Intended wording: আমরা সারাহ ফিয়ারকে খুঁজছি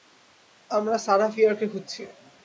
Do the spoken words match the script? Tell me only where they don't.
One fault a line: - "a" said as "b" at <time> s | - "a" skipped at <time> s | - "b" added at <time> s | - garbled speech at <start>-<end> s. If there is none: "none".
none